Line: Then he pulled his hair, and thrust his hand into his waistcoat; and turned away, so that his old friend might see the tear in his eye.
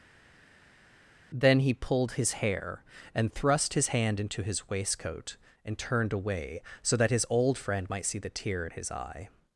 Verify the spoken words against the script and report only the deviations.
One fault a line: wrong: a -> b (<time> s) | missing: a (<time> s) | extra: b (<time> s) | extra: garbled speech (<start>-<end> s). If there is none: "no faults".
no faults